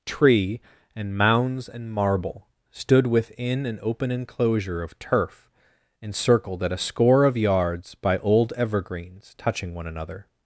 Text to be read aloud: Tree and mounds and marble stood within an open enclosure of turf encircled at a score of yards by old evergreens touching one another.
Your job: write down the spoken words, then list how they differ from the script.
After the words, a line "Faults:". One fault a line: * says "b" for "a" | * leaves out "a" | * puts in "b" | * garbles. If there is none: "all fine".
Tree and mounds and marble stood within an open enclosure of turf encircled at a score of yards by old evergreens touching one another.
Faults:
all fine